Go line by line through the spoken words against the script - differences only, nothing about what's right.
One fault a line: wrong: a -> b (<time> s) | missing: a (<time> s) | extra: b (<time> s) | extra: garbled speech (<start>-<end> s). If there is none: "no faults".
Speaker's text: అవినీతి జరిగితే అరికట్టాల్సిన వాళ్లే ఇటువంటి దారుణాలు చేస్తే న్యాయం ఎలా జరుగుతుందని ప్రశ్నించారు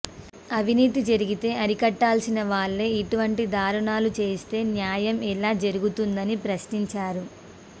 no faults